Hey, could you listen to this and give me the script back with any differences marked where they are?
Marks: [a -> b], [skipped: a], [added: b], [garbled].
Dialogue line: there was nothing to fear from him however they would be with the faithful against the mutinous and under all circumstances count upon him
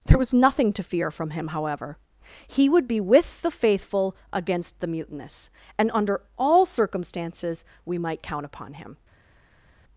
there was nothing to fear from him however [they -> he] would be with the faithful against the mutinous and under all circumstances [added: we might] count upon him